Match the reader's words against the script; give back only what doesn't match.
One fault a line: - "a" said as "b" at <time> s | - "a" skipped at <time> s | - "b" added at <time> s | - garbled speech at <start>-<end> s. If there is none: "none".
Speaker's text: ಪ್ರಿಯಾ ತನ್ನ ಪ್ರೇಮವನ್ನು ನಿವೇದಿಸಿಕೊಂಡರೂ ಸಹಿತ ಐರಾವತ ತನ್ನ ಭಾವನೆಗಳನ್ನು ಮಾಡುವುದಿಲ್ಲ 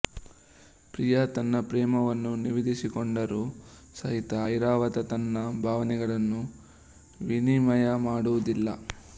- "ವಿನಿಮಯ" added at 7.2 s